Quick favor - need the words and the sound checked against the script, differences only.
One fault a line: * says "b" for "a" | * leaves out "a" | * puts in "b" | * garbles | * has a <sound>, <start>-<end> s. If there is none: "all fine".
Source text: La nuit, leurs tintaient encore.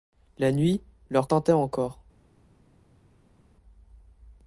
all fine